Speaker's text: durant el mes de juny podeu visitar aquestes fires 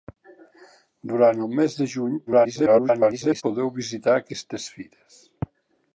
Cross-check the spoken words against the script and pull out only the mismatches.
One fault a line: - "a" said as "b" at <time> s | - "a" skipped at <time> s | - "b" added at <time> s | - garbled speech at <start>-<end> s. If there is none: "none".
- garbled speech at 2.3-3.4 s